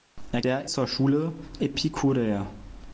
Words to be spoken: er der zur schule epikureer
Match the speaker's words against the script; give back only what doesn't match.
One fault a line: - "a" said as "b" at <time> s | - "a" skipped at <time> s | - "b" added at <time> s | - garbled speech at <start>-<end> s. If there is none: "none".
none